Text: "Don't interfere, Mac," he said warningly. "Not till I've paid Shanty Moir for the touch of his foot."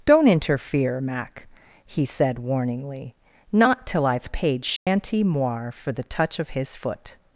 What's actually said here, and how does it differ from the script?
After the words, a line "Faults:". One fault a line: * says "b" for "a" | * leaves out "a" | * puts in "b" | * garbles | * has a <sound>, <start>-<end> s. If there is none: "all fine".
"Don't interfere, Mac," he said warningly. "Not till I've paid Shanty Moir for the touch of his foot."
Faults:
* has a dropout, 4.8-4.9 s